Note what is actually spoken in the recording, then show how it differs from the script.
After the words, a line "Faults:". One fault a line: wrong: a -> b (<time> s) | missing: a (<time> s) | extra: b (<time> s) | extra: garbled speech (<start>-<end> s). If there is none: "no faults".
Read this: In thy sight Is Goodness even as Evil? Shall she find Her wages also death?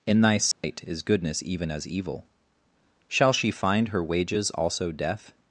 In thy sight Is Goodness even as Evil? Shall she find Her wages also death?
Faults:
no faults